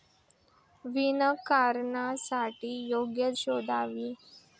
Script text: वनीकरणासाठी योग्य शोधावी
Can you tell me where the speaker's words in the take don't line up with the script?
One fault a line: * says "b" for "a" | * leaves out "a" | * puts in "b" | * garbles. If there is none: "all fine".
all fine